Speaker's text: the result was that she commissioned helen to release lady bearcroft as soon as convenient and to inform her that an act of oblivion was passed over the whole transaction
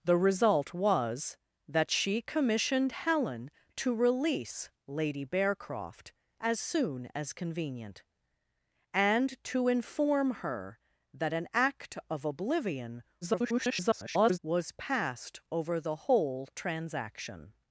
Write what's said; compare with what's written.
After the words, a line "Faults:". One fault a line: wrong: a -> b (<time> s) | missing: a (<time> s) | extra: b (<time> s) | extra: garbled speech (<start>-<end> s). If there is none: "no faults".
the result was that she commissioned helen to release lady bearcroft as soon as convenient and to inform her that an act of oblivion [garbled] was passed over the whole transaction
Faults:
extra: garbled speech (13.2-14.4 s)